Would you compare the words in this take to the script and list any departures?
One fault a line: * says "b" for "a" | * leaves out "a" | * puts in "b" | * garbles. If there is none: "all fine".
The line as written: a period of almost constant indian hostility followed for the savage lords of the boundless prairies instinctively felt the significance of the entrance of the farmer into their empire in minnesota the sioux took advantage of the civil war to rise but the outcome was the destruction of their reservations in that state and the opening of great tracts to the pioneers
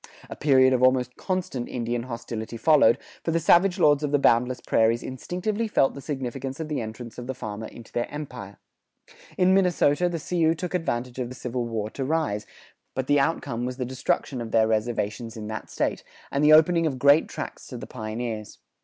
all fine